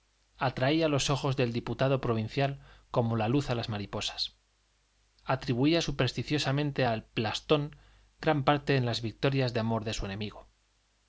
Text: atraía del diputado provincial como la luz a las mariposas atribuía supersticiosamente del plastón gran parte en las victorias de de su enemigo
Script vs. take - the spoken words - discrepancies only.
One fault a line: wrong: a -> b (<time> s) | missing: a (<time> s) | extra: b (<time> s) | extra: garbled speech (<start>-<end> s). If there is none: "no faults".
extra: los ojos (0.9 s)
wrong: del -> al (6.8 s)
extra: amor (9.6 s)